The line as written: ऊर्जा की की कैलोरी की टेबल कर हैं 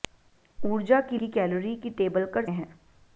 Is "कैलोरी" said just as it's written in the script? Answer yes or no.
yes